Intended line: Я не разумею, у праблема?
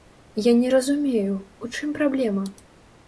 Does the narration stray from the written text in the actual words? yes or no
yes